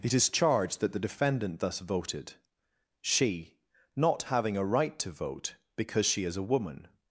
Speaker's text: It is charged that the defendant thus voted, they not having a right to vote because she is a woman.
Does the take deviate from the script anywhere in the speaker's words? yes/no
yes